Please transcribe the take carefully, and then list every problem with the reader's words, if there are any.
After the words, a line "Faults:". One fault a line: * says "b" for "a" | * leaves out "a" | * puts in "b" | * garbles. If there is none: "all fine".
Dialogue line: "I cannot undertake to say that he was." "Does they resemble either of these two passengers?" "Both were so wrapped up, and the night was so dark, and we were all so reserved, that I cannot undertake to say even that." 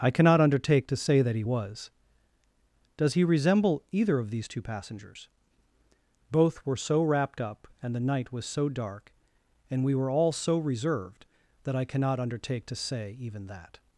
"I cannot undertake to say that he was." "Does he resemble either of these two passengers?" "Both were so wrapped up, and the night was so dark, and we were all so reserved, that I cannot undertake to say even that."
Faults:
* says "he" for "they"